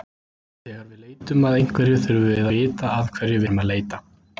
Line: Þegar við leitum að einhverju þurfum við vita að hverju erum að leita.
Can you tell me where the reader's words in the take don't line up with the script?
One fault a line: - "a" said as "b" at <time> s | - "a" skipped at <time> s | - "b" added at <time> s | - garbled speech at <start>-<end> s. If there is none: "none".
none